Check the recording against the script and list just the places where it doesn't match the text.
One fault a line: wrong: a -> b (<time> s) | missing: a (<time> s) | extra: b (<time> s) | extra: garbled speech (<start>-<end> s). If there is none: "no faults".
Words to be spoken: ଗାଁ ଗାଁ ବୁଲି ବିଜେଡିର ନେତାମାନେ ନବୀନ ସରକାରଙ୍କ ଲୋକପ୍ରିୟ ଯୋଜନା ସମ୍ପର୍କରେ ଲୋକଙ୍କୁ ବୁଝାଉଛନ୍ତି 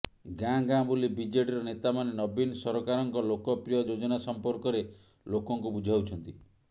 no faults